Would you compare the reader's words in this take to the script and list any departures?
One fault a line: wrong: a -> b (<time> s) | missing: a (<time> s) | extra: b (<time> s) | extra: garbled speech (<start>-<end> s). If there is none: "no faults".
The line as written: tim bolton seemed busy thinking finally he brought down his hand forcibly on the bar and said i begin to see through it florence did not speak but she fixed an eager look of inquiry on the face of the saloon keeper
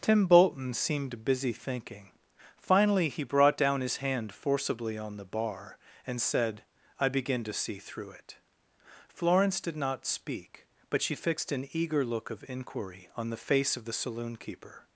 no faults